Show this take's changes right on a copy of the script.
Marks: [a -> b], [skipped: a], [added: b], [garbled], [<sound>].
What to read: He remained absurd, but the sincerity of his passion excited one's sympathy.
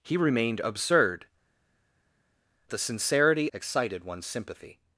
He remained absurd, [skipped: but] the sincerity [skipped: of his passion] excited one's sympathy.